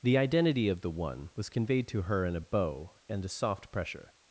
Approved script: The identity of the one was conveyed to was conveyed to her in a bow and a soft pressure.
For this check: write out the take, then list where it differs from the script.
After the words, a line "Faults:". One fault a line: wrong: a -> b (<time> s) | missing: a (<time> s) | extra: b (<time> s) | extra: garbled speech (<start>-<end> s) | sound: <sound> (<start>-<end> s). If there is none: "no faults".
The identity of the one was conveyed to her in a bow and a soft pressure.
Faults:
missing: was conveyed to (2.0 s)